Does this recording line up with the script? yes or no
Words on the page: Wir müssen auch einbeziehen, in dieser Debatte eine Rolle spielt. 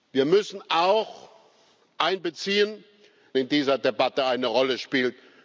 yes